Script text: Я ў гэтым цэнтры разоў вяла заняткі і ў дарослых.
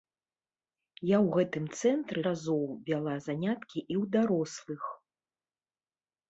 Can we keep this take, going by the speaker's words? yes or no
yes